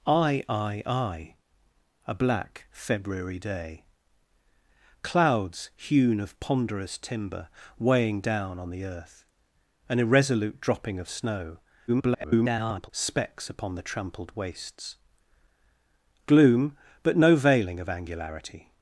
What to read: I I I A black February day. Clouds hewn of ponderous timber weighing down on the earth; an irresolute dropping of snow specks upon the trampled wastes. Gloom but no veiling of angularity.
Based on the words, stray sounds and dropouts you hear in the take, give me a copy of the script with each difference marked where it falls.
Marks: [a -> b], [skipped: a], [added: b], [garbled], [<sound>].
I I I A black February day. Clouds hewn of ponderous timber weighing down on the earth; an irresolute dropping of snow [garbled] specks upon the trampled wastes. Gloom but no veiling of angularity.